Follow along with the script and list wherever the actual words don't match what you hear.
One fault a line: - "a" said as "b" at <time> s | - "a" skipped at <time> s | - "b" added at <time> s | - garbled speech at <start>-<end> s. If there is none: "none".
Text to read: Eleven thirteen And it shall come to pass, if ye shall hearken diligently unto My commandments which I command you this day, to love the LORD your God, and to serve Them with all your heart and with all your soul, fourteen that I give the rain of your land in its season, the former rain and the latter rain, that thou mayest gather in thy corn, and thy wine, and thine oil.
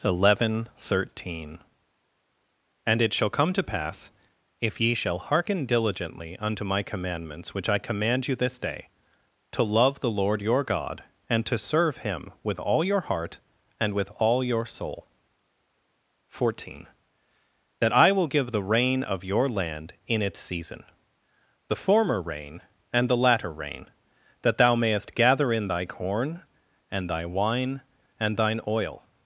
- "Them" said as "Him" at 12.0 s
- "will" added at 18.1 s